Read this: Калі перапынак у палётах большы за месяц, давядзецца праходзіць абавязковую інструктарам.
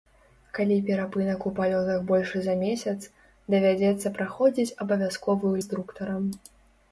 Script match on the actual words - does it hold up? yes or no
yes